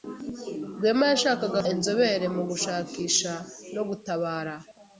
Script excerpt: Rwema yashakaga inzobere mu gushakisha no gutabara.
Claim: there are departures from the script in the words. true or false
false